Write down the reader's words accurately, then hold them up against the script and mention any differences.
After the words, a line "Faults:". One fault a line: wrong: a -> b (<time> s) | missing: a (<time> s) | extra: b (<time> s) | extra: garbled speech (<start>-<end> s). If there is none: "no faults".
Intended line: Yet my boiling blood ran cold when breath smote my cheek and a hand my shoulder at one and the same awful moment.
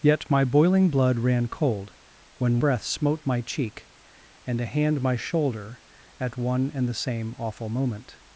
Yet my boiling blood ran cold when breath smote my cheek and a hand my shoulder at one and the same awful moment.
Faults:
no faults